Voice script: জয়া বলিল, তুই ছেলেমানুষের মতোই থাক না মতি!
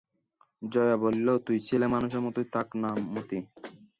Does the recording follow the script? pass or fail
pass